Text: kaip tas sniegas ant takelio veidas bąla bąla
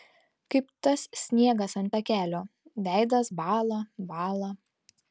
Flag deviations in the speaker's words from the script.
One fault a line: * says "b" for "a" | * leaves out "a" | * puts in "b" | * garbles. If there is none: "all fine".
all fine